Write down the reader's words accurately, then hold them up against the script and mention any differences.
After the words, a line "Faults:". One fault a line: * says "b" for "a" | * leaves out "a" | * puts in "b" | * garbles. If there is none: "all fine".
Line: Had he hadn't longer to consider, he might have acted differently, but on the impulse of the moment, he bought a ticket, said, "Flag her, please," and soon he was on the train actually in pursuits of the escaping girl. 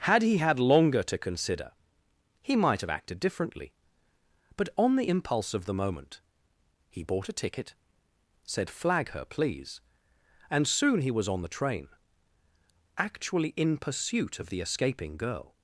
Had he had longer to consider, he might have acted differently, but on the impulse of the moment, he bought a ticket, said, "Flag her, please," and soon he was on the train actually in pursuit of the escaping girl.
Faults:
* says "had" for "hadn't"
* says "pursuit" for "pursuits"